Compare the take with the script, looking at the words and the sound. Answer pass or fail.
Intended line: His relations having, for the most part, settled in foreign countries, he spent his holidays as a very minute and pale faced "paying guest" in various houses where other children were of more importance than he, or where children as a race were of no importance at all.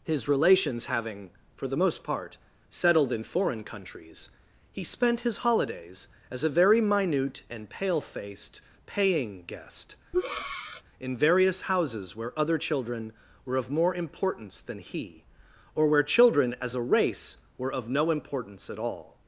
fail